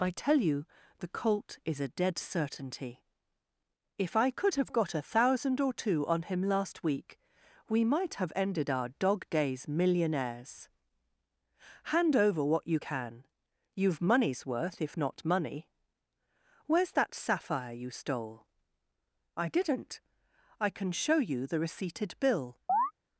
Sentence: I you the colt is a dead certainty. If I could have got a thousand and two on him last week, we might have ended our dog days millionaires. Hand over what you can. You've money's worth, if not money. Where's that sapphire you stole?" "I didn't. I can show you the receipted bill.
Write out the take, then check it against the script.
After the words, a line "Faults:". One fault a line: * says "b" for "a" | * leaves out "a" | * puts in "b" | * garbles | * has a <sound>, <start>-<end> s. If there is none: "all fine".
I tell you the colt is a dead certainty. If I could have got a thousand or two on him last week, we might have ended our dog days millionaires. Hand over what you can. You've money's worth, if not money. Where's that sapphire you stole?" "I didn't. I can show you the receipted bill.
Faults:
* puts in "tell"
* says "or" for "and"
* has a chirp, 22.7-22.9 s